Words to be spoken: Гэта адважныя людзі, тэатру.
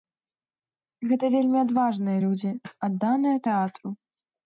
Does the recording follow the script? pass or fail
fail